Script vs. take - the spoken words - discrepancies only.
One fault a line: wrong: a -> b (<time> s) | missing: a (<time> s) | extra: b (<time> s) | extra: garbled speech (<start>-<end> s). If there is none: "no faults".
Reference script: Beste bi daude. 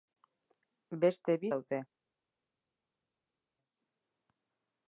no faults